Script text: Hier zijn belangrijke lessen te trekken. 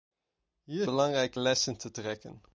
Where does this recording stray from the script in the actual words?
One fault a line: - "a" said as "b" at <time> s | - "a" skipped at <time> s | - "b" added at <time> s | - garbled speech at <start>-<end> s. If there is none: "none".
- "zijn" skipped at 0.9 s